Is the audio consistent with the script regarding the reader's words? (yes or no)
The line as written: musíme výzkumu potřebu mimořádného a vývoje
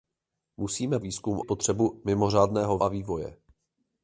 yes